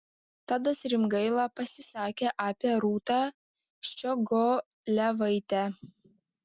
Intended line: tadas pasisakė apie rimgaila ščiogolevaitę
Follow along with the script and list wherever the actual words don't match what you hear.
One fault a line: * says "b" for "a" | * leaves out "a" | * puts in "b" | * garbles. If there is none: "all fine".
* puts in "rimgaila"
* says "rūtą" for "rimgaila"